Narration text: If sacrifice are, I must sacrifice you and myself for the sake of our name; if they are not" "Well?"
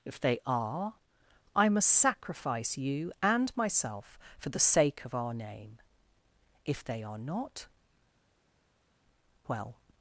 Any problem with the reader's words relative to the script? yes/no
yes